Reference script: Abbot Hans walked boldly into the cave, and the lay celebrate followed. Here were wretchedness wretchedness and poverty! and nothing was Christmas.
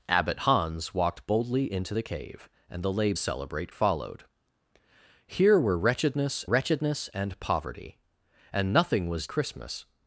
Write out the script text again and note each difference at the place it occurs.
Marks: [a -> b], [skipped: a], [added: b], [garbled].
Abbot Hans walked boldly into the cave, and the lay celebrate followed. Here were wretchedness wretchedness and poverty! and nothing was Christmas.